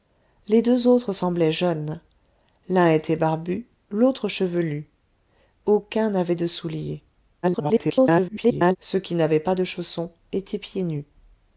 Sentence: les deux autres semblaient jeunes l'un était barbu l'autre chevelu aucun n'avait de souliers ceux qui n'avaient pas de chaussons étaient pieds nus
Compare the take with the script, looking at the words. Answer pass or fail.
fail